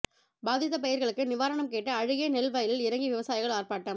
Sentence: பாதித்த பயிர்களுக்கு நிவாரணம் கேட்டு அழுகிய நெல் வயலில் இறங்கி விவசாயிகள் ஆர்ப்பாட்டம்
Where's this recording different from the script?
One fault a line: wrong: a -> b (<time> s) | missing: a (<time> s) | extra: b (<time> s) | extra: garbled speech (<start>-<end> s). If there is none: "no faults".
no faults